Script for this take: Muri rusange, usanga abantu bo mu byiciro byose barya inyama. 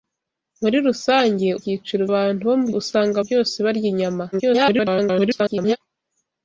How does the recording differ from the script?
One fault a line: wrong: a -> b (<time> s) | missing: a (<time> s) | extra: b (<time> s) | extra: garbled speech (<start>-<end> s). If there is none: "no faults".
wrong: usanga -> byiciro (1.6 s)
wrong: byiciro -> usanga (2.8 s)
extra: garbled speech (4.3-5.8 s)